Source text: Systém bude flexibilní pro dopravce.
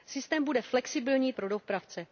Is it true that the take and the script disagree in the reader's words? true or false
false